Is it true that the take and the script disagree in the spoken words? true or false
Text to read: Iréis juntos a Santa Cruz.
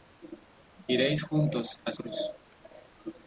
true